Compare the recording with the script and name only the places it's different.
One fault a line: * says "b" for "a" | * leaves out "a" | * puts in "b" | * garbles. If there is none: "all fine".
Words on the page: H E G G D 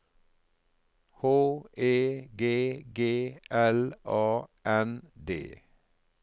* puts in "L A N"